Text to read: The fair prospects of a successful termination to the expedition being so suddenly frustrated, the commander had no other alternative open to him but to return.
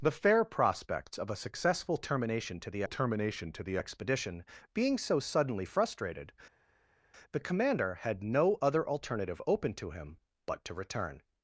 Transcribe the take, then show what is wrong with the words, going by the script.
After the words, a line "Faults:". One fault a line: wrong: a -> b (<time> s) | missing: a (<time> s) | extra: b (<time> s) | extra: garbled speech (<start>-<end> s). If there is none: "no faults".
The fair prospects of a successful termination to the termination to the expedition being so suddenly frustrated, the commander had no other alternative open to him but to return.
Faults:
extra: termination to the (2.8 s)